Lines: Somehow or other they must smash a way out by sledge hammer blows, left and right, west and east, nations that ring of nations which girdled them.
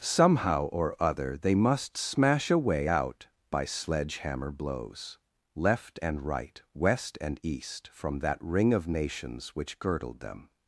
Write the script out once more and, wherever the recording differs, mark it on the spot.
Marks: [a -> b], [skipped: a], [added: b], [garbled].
Somehow or other they must smash a way out by sledge hammer blows, left and right, west and east, [nations -> from] that ring of nations which girdled them.